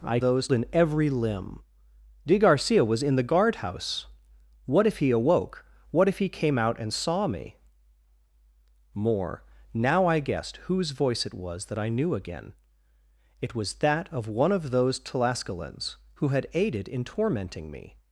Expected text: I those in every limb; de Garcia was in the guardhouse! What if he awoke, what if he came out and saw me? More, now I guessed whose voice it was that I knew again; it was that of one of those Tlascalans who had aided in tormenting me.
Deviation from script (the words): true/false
false